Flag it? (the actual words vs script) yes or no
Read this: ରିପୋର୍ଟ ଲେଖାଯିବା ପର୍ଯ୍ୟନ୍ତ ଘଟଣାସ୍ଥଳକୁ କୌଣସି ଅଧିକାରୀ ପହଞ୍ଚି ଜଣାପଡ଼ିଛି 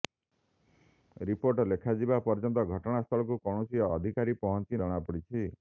no